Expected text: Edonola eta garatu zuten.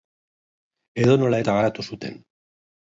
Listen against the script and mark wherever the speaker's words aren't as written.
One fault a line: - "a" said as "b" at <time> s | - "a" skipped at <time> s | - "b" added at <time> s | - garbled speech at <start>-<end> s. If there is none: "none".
none